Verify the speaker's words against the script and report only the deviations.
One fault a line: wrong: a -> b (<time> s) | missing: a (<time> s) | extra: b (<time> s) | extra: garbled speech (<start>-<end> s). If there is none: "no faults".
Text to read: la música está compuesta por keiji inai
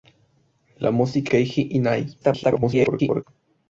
missing: está compuesta por (1.3 s)
extra: garbled speech (2.2-3.2 s)